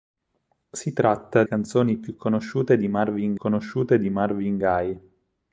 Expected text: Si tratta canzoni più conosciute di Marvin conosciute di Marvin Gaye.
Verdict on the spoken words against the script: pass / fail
pass